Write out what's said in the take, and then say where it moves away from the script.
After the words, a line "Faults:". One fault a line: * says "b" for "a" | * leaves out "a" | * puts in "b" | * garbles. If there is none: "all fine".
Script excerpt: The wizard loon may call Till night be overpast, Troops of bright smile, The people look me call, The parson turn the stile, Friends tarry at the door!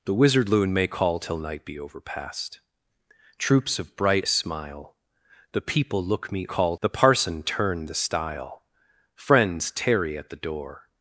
The wizard loon may call Till night be overpast, Troops of bright smile, The people look me call, The parson turn the stile, Friends tarry at the door!
Faults:
all fine